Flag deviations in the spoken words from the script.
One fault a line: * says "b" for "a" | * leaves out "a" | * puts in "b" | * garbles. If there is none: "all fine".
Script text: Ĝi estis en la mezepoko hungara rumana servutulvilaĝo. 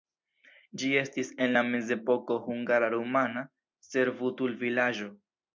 all fine